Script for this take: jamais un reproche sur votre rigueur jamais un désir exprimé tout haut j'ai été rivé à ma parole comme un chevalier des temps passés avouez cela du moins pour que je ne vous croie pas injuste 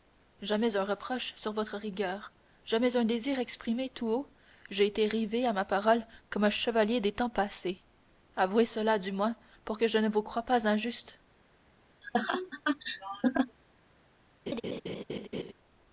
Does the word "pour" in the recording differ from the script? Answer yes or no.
no